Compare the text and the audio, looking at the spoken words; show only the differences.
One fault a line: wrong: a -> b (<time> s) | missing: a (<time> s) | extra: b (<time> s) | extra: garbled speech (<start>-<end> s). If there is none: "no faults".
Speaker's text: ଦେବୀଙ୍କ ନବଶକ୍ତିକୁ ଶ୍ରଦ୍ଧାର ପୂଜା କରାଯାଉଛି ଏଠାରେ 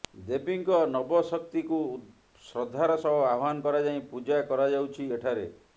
extra: ସହ ଆହ୍ୱାନ କରାଯାଇ (3.0 s)